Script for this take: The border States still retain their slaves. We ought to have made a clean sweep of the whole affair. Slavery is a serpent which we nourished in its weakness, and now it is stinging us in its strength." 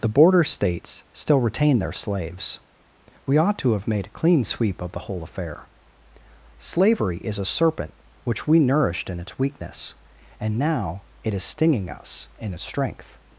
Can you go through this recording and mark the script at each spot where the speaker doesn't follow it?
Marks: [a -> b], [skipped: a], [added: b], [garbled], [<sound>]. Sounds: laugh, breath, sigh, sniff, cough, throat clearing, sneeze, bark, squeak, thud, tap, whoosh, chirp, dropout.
The border States still retain their slaves. We ought to have made a clean sweep of the whole affair. Slavery is a serpent which we nourished in its weakness, and now it is stinging us in its strength."